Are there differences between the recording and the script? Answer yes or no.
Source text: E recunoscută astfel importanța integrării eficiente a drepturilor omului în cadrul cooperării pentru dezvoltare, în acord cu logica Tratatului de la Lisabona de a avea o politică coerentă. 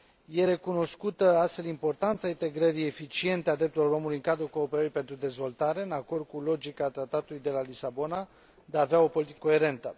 no